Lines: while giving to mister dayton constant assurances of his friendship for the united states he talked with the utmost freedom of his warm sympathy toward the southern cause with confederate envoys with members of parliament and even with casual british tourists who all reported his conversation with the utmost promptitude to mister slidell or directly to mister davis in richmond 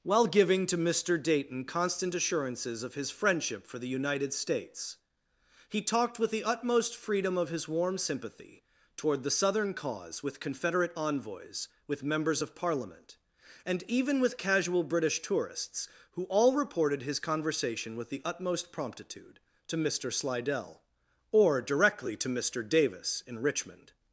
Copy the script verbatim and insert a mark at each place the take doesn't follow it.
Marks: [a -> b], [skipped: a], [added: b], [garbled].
while giving to mister dayton constant assurances of his friendship for the united states he talked with the utmost freedom of his warm sympathy toward the southern cause with confederate envoys with members of parliament and even with casual british tourists who all reported his conversation with the utmost promptitude to mister slidell or directly to mister davis in richmond